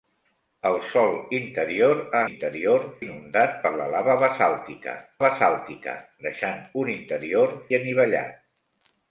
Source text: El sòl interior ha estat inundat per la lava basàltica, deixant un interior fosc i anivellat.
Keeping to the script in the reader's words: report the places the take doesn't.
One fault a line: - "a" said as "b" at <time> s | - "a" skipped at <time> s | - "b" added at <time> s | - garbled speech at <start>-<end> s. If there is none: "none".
- "estat" said as "interior" at 2.3 s
- "basàltica" added at 5.2 s
- "fosc" skipped at 7.5 s